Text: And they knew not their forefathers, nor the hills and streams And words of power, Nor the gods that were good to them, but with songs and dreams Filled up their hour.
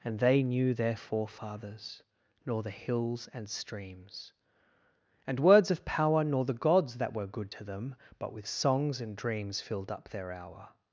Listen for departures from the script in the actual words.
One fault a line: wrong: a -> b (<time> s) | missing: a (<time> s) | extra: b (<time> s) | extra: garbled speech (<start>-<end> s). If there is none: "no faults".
missing: not (0.7 s)